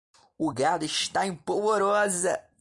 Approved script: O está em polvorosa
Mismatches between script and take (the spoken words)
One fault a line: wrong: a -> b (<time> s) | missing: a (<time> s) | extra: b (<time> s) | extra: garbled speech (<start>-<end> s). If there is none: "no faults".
extra: gado (0.5 s)